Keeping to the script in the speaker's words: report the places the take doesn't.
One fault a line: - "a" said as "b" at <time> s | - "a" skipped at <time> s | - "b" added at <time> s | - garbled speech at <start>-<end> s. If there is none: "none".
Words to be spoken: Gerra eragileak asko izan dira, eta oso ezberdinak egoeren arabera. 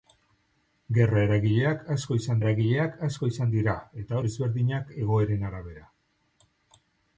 - "eragileak asko izan" added at 2.4 s
- "oso" skipped at 4.2 s